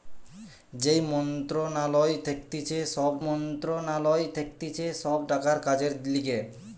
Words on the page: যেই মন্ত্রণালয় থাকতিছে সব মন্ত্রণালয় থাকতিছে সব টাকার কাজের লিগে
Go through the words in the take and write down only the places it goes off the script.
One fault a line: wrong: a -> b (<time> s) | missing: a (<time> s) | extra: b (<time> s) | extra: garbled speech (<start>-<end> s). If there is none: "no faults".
no faults